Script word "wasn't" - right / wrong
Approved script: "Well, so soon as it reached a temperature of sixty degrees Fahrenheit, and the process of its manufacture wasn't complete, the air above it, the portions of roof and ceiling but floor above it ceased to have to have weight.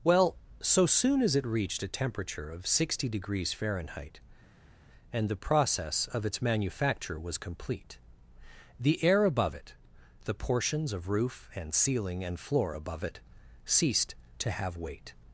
wrong